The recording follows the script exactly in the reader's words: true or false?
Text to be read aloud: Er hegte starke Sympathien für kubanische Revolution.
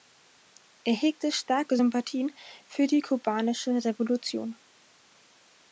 false